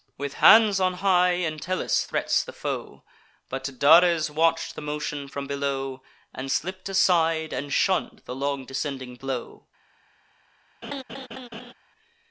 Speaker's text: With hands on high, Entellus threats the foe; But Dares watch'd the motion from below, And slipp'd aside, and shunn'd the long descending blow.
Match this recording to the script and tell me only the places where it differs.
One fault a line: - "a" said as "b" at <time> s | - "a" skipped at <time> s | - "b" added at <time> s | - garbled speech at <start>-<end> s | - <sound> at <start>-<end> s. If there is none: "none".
- laugh at 10.8-11.7 s